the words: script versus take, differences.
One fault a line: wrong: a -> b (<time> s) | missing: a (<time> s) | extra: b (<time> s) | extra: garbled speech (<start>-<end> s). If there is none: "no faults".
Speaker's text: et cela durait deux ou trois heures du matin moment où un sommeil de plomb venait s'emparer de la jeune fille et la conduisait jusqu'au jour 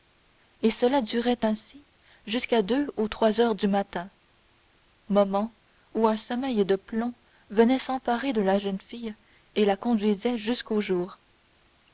extra: ainsi jusqu'à (1.4 s)